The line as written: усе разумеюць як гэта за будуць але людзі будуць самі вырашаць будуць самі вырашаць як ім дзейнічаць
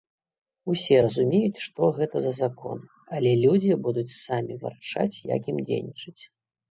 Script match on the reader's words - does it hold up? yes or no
no